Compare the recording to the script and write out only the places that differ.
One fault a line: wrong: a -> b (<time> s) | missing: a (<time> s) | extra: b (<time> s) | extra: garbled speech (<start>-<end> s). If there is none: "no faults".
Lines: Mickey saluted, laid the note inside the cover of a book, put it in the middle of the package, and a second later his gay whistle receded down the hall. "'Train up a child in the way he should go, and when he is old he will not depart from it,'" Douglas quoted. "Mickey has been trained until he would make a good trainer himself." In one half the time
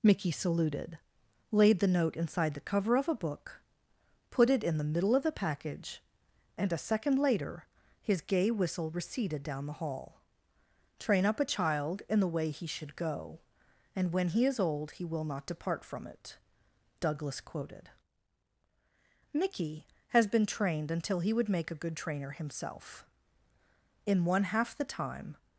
no faults